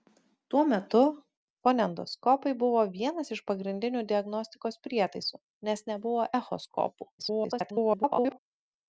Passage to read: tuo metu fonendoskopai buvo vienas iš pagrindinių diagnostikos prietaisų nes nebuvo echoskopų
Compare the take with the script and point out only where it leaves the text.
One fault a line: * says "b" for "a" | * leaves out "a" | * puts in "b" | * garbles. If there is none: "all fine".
* garbles